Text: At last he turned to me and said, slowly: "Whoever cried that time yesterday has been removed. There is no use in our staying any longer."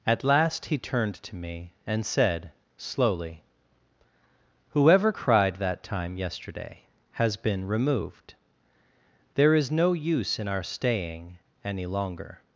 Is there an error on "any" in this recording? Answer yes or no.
no